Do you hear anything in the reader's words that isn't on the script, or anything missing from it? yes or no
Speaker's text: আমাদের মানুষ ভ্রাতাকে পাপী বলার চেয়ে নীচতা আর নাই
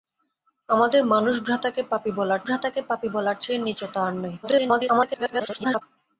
yes